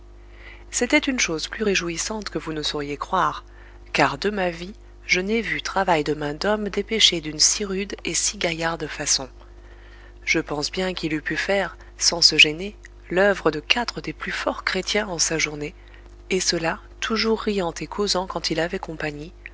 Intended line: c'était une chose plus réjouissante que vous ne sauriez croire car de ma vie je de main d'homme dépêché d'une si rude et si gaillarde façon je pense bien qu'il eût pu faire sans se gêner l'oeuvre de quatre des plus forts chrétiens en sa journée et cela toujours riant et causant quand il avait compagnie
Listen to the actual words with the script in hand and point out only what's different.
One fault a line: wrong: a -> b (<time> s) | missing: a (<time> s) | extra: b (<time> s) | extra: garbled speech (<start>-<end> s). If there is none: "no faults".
extra: n'ai vu travail (5.2 s)